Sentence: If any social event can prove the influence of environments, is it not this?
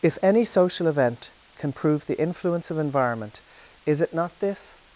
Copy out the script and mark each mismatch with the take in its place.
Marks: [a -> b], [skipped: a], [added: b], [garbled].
If any social event can prove the influence of [environments, -> environment] is it not this?